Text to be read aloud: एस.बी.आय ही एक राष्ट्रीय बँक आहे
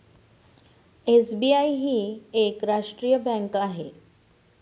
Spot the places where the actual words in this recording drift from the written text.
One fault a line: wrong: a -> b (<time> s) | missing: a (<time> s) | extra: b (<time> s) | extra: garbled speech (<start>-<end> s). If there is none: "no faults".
no faults